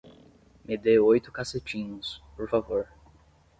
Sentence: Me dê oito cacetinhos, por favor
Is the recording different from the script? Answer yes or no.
no